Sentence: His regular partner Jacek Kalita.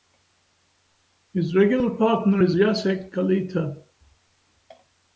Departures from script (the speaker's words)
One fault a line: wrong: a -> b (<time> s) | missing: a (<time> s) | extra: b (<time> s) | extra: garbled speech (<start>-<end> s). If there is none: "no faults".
extra: is (2.4 s)